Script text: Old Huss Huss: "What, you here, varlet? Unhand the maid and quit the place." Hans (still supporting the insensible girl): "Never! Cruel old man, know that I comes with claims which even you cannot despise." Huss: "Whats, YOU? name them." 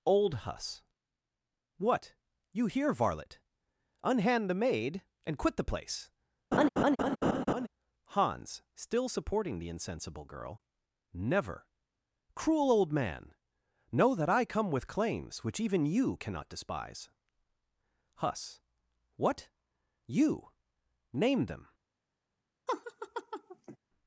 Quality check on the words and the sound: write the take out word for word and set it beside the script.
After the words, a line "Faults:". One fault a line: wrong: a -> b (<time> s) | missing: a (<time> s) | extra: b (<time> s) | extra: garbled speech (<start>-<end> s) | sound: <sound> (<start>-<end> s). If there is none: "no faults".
Old Huss: "What, you here, varlet? Unhand the maid and quit the place." Hans (still supporting the insensible girl): "Never! Cruel old man, know that I come with claims which even you cannot despise." Huss: "What, YOU? name them."
Faults:
missing: Huss (0.8 s)
sound: laugh (6.5-7.7 s)
wrong: comes -> come (14.4 s)
wrong: Whats -> What (19.1 s)
sound: laugh (22.7-23.8 s)